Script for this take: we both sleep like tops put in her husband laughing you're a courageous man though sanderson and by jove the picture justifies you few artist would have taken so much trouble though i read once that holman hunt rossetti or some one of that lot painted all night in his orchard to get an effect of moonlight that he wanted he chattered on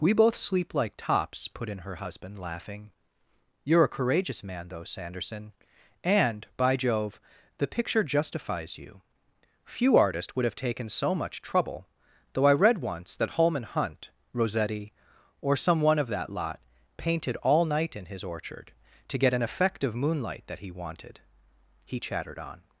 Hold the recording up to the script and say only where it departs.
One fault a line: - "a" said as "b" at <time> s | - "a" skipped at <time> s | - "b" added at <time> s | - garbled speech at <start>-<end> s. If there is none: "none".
- "artist" said as "artists" at 9.9 s